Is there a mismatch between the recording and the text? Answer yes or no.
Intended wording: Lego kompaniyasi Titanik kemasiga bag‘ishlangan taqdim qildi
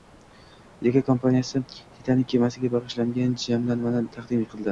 yes